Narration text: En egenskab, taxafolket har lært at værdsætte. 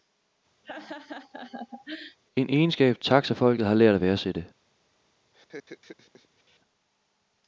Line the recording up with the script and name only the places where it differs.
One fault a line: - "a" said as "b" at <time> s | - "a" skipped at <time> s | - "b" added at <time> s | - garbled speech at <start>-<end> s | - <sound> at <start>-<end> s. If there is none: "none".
- laugh at 0.6-2.2 s
- laugh at 5.3-6.6 s